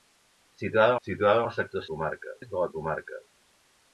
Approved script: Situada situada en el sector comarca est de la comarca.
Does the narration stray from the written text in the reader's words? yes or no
no